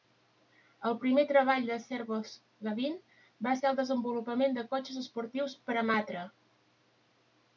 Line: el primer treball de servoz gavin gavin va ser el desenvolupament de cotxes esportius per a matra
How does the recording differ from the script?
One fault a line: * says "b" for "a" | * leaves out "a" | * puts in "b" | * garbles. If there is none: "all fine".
* leaves out "gavin"